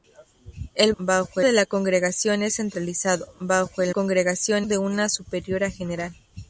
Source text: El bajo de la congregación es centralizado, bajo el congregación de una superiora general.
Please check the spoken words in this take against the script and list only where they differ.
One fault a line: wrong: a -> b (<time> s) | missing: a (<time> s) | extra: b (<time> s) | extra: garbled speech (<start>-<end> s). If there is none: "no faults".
no faults